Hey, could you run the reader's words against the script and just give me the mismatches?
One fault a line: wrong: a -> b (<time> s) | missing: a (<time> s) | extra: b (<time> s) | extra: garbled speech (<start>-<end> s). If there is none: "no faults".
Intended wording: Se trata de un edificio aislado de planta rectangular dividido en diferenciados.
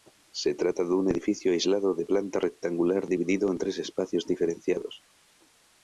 extra: tres espacios (3.6 s)